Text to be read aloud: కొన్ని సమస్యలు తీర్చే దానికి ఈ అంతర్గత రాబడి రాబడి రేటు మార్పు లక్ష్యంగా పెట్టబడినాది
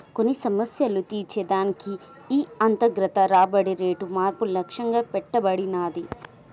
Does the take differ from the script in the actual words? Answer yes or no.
yes